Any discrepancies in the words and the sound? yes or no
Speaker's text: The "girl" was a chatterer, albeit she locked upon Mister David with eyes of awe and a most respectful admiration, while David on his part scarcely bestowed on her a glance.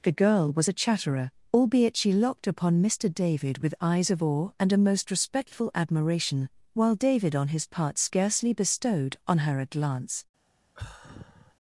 yes